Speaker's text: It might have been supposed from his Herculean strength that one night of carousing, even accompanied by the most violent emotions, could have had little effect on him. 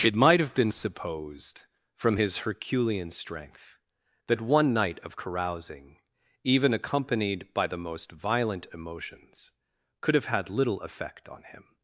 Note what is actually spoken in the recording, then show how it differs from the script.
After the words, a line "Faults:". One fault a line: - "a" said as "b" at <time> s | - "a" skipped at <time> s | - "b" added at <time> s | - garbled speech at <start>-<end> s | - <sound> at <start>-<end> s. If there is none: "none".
It might have been supposed from his Herculean strength that one night of carousing, even accompanied by the most violent emotions, could have had little effect on him.
Faults:
none